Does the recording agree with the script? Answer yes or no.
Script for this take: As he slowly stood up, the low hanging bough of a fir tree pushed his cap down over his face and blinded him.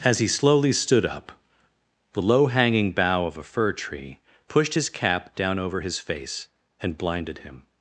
yes